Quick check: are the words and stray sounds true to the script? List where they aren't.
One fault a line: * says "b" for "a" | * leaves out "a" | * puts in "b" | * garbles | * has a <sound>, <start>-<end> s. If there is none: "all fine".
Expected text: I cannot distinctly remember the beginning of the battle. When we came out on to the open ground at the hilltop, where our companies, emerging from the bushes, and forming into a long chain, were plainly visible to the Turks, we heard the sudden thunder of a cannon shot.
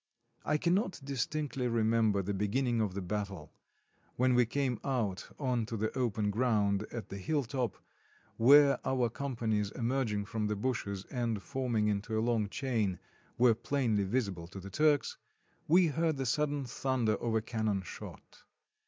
all fine